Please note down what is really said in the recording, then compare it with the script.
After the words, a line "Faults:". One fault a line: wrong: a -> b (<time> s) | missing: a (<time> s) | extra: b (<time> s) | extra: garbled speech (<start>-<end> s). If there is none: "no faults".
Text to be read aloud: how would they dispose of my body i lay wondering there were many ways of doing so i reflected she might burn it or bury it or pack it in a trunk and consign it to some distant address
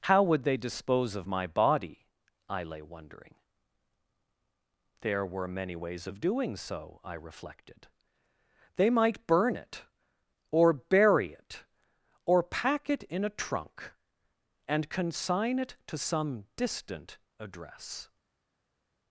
how would they dispose of my body i lay wondering there were many ways of doing so i reflected they might burn it or bury it or pack it in a trunk and consign it to some distant address
Faults:
wrong: she -> they (8.8 s)